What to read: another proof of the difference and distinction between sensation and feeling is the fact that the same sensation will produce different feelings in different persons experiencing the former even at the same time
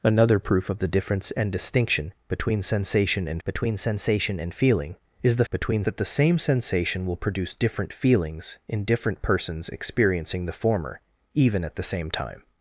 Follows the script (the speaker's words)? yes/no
no